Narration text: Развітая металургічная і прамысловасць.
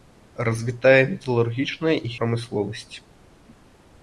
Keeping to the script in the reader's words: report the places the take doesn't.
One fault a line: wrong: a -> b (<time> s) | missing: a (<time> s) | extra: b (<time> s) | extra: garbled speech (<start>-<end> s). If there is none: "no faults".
no faults